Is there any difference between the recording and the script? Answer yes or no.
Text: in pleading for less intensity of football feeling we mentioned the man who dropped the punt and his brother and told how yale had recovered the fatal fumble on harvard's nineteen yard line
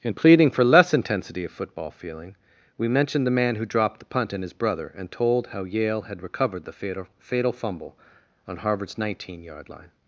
yes